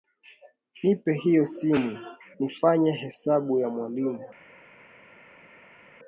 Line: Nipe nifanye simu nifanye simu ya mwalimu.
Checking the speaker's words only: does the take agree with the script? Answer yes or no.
no